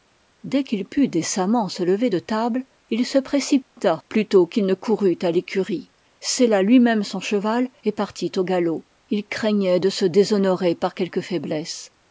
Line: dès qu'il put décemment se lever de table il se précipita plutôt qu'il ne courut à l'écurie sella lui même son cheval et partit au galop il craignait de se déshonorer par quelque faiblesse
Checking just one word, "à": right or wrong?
right